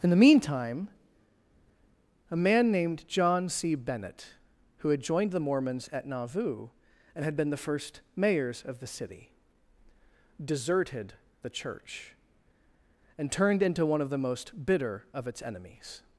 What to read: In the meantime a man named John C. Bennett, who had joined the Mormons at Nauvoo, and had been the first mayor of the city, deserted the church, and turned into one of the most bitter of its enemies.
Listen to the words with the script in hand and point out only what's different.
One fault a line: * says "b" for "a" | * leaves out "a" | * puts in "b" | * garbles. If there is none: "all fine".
* says "mayors" for "mayor"